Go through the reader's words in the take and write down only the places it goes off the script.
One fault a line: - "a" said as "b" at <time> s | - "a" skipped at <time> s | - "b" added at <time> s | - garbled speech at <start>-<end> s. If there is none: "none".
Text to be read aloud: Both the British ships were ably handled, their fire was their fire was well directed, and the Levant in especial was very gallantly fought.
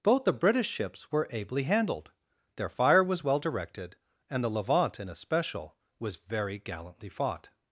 - "their fire was" skipped at 3.2 s